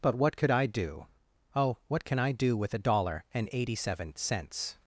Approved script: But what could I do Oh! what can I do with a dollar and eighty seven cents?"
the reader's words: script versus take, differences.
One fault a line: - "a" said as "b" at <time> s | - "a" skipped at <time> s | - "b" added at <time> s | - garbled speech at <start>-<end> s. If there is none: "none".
none